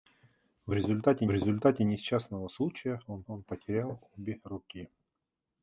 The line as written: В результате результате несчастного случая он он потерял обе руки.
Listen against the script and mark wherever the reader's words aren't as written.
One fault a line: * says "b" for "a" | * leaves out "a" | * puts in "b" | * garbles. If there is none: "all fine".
all fine